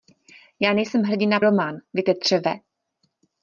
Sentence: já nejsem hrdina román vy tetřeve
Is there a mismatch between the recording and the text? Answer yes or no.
no